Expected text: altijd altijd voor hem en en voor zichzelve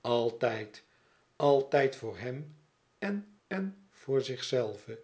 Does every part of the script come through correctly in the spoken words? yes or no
yes